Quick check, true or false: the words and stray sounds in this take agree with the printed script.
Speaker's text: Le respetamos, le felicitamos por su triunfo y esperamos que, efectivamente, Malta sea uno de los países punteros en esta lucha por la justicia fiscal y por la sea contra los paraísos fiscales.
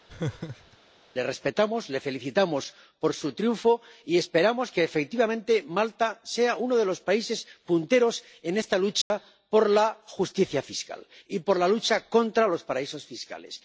false